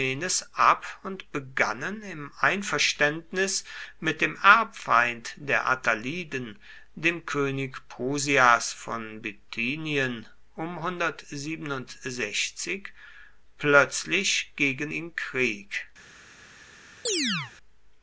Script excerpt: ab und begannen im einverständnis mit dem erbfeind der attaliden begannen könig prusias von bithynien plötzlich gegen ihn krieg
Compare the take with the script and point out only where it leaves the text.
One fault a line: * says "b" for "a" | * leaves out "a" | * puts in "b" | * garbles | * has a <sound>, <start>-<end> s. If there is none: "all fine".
* says "dem" for "begannen"
* has a chirp, 17.1-17.5 s